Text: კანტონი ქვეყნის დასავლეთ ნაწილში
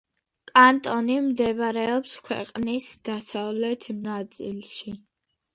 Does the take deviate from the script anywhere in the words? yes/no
yes